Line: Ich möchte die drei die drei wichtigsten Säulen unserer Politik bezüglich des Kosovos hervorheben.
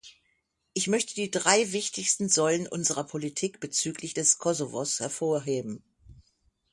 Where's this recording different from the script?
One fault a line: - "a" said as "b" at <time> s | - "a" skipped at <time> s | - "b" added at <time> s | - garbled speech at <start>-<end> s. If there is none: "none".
- "die drei" skipped at 1.7 s